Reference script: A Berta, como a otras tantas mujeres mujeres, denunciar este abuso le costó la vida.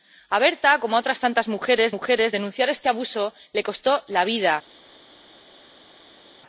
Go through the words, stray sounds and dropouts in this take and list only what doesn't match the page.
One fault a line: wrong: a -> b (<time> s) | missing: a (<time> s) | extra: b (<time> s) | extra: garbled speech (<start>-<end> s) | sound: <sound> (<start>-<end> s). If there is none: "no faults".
no faults